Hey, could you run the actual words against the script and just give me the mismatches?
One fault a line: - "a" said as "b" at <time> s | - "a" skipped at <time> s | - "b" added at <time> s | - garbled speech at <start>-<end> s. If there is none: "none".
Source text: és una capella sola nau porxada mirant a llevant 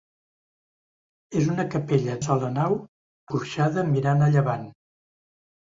none